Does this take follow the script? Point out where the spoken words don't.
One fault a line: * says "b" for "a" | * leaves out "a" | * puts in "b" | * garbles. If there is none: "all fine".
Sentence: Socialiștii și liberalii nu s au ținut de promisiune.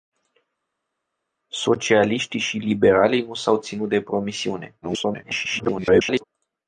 * garbles